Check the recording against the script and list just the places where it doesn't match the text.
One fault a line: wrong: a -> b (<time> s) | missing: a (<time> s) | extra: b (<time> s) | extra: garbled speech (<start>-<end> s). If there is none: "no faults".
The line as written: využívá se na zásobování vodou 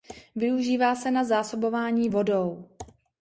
no faults